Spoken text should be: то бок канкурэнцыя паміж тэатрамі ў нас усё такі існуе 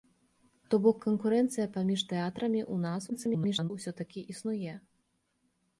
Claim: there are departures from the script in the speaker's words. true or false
true